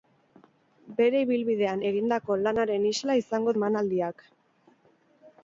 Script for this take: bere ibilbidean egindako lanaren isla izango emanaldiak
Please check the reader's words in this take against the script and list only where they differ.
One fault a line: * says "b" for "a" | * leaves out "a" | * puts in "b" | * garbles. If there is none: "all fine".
all fine